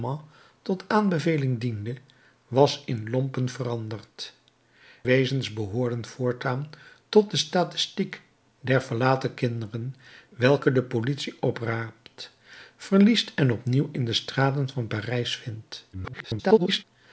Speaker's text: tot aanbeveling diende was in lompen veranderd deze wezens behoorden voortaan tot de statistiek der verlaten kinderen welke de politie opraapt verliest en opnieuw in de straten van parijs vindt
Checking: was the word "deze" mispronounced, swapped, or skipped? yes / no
yes